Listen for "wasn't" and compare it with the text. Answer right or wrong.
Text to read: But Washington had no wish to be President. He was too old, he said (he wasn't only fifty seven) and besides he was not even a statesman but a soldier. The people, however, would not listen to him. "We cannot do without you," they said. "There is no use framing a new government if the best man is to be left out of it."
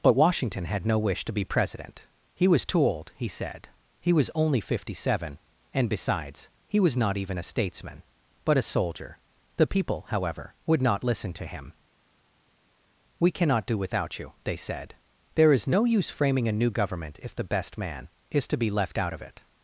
wrong